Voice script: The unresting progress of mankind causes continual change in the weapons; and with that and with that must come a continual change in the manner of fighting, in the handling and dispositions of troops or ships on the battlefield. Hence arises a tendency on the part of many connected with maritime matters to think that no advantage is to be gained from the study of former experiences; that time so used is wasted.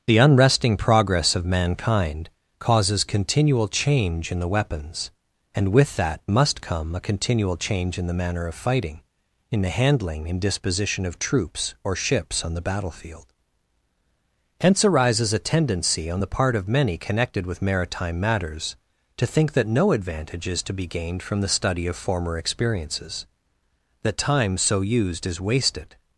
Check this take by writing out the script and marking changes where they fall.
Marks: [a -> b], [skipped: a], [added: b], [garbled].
The unresting progress of mankind causes continual change in the weapons; and with that [skipped: and with that] must come a continual change in the manner of fighting, in the handling and [dispositions -> disposition] of troops or ships on the battlefield. Hence arises a tendency on the part of many connected with maritime matters to think that no advantage is to be gained from the study of former experiences; that time so used is wasted.